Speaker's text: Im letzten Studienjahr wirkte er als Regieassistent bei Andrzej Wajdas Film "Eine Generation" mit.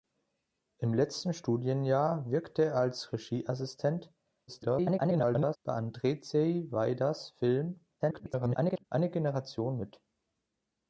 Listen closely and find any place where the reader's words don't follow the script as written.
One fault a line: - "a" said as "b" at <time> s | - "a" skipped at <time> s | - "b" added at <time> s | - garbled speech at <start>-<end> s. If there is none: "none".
- garbled speech at 4.5-5.6 s
- garbled speech at 8.0-8.8 s